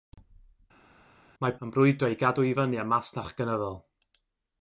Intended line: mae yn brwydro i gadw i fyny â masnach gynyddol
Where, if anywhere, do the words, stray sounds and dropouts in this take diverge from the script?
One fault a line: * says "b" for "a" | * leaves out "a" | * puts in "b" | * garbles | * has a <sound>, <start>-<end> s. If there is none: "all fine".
all fine